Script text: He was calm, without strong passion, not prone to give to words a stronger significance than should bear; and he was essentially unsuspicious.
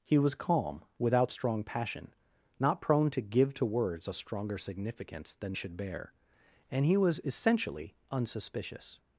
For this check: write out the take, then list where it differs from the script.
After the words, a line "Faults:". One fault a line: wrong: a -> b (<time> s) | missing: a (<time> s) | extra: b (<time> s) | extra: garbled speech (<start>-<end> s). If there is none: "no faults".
He was calm, without strong passion, not prone to give to words a stronger significance than should bear; and he was essentially unsuspicious.
Faults:
no faults